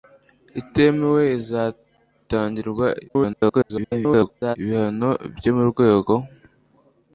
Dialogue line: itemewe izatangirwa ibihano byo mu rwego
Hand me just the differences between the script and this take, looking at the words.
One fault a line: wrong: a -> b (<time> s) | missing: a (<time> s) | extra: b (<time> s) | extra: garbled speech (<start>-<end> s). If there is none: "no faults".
extra: garbled speech (3.1-4.6 s)